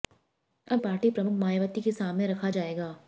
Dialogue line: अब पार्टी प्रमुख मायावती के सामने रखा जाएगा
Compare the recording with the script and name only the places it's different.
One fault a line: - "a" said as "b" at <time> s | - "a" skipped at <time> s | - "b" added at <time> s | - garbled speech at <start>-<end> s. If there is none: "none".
none